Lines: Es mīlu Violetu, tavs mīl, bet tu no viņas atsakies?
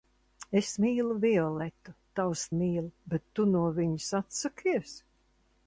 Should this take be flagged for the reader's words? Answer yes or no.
no